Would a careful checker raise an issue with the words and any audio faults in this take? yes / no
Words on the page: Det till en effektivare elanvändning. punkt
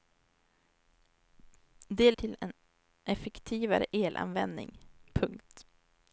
no